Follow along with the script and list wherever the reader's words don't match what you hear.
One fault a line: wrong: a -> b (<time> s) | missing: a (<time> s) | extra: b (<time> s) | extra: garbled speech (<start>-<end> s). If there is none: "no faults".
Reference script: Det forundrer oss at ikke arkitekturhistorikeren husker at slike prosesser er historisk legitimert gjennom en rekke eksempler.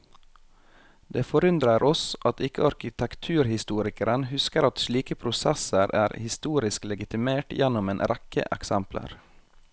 no faults